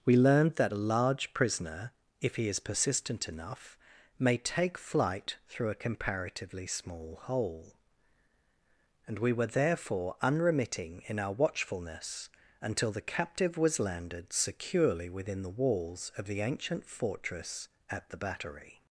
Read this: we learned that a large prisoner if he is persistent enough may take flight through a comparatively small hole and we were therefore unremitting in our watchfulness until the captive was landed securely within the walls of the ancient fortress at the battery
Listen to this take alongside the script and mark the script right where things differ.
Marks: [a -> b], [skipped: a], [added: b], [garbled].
we learned that a large prisoner if he is persistent enough may take flight through a comparatively small hole and we were therefore unremitting in our watchfulness until the captive was landed securely within the walls of the ancient fortress at the battery